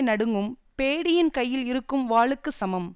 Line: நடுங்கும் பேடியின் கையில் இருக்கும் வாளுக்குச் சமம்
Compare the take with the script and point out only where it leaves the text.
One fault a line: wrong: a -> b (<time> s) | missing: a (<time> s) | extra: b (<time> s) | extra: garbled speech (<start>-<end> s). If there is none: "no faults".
no faults